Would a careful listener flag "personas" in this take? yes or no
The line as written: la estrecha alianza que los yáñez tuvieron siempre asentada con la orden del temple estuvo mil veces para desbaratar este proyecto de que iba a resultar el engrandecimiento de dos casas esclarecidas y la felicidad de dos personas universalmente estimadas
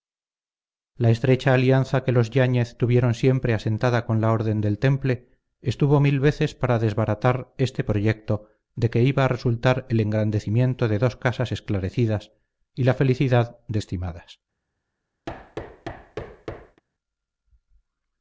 yes